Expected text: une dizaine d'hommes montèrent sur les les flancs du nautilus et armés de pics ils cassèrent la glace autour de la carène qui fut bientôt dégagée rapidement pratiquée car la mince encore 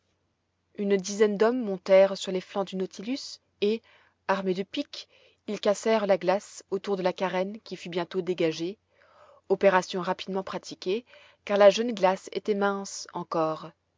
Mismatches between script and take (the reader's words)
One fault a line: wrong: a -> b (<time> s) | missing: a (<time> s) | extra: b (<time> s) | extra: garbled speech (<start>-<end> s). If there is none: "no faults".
missing: les (2.4 s)
extra: opération (9.5 s)
extra: jeune glace était (11.7 s)